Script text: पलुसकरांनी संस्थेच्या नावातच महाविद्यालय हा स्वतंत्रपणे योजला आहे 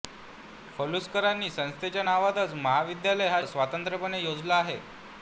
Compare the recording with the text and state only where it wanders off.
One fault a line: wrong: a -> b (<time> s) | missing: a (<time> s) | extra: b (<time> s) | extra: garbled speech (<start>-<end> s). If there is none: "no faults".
no faults